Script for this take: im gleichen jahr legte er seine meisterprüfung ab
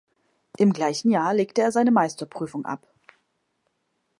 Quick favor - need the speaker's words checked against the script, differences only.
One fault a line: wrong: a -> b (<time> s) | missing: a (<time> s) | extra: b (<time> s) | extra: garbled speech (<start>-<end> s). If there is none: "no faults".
no faults